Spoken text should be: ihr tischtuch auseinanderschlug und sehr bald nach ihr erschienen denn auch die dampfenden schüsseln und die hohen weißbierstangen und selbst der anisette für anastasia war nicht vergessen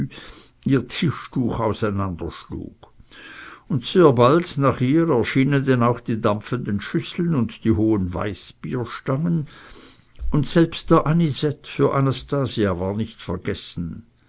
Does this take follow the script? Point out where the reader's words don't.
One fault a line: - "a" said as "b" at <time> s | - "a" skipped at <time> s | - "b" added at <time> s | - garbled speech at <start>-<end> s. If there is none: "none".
none